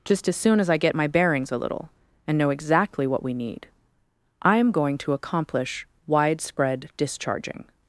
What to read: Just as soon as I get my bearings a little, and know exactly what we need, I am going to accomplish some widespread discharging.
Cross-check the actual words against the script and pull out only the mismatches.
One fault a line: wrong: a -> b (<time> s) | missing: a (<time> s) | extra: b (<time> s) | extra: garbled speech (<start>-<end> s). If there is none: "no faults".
missing: some (5.9 s)